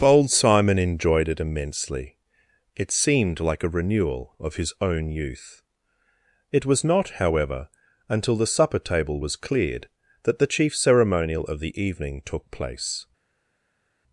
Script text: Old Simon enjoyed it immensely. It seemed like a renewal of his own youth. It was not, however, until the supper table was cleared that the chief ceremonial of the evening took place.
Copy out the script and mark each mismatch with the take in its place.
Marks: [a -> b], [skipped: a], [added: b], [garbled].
[Old -> Bold] Simon enjoyed it immensely. It seemed like a renewal of his own youth. It was not, however, until the supper table was cleared that the chief ceremonial of the evening took place.